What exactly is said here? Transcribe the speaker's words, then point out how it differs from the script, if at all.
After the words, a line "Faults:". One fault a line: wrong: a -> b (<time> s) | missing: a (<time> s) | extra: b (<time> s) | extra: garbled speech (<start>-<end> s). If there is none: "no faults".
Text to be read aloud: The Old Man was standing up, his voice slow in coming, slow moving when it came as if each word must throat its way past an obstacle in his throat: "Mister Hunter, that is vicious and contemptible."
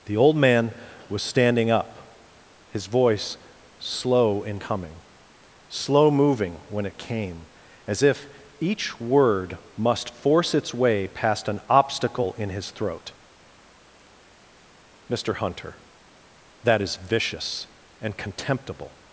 The Old Man was standing up, his voice slow in coming, slow moving when it came as if each word must force its way past an obstacle in his throat: "Mister Hunter, that is vicious and contemptible."
Faults:
wrong: throat -> force (10.1 s)